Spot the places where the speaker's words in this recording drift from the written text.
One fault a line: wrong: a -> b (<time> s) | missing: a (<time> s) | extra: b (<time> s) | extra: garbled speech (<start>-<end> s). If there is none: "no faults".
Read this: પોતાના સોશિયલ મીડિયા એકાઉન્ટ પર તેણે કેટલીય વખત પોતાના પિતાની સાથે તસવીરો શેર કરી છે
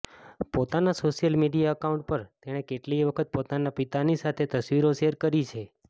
no faults